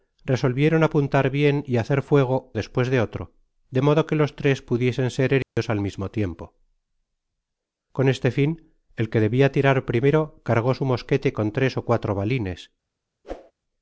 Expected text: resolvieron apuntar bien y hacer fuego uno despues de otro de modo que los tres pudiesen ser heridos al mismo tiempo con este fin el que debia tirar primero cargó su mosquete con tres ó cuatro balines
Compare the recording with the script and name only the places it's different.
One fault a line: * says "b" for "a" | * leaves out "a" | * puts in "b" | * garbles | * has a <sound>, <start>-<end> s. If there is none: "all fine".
* leaves out "uno"
* has a dropout, 5.4-5.6 s
* has a whoosh, 13.2-13.5 s